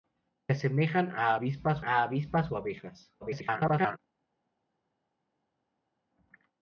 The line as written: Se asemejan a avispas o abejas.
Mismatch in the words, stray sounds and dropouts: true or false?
true